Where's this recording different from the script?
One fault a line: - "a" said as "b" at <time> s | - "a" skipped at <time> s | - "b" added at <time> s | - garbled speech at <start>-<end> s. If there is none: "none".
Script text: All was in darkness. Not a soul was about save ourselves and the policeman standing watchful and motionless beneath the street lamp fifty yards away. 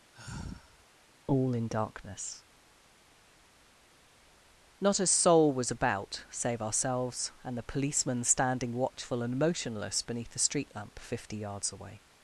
- "was" skipped at 1.5 s